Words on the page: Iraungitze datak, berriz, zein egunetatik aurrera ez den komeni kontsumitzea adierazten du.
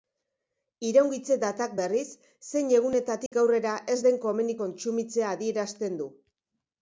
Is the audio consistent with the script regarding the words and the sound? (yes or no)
no